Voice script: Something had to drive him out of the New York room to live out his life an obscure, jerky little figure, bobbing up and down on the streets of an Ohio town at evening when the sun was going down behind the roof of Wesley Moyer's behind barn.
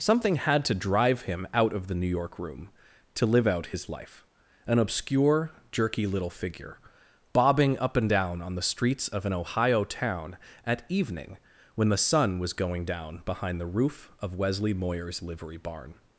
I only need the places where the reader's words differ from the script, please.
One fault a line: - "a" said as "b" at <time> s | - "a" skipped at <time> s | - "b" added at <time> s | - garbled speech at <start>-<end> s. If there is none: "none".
- "behind" said as "livery" at 15.2 s